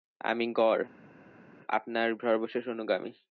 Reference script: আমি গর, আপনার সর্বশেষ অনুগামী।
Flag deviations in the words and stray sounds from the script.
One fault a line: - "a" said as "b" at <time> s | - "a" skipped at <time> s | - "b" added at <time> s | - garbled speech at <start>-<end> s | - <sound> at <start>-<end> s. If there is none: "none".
none